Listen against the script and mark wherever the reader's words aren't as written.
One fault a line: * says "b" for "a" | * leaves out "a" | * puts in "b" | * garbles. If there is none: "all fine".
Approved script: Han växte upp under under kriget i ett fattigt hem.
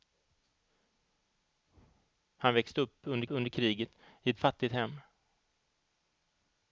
all fine